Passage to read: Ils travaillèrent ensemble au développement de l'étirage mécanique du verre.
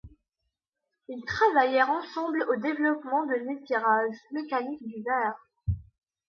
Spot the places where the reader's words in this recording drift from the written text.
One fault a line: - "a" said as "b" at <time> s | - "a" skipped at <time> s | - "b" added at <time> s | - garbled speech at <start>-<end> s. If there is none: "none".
none